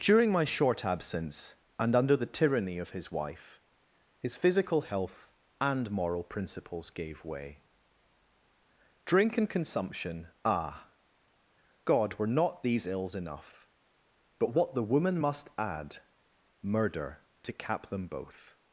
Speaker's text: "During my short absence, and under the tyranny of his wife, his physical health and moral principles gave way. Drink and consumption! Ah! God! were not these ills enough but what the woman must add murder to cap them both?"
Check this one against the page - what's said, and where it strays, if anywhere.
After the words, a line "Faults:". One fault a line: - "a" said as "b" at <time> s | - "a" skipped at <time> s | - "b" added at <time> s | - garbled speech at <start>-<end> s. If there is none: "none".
"During my short absence, and under the tyranny of his wife, his physical health and moral principles gave way. Drink and consumption! Ah! God! were not these ills enough but what the woman must add murder to cap them both?"
Faults:
none